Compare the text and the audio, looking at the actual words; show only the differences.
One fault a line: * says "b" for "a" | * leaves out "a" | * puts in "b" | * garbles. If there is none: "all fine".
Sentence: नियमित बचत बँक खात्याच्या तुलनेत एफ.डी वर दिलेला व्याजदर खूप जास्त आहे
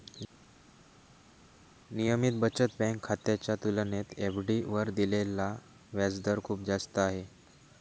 all fine